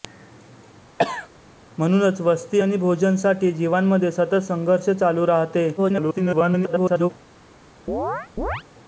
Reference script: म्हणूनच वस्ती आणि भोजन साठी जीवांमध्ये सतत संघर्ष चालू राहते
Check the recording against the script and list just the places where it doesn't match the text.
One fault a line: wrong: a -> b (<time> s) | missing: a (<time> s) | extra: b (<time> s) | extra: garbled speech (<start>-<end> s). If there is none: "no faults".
extra: garbled speech (5.8-7.1 s)